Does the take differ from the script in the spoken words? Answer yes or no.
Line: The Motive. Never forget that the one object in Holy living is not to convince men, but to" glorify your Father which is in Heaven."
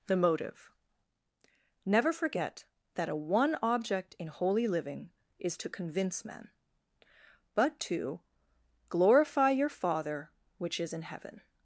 yes